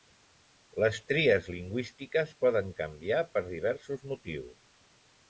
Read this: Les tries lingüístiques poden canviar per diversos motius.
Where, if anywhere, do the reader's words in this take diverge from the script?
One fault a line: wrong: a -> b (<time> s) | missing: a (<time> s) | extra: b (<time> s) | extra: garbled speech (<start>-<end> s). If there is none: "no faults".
no faults